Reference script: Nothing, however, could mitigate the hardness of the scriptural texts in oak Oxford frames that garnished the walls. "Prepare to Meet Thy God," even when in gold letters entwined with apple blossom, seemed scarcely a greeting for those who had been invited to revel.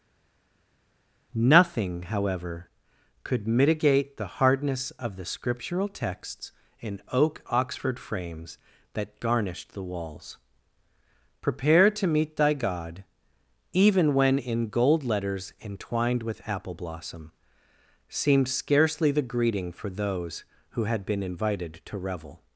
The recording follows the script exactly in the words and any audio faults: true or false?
false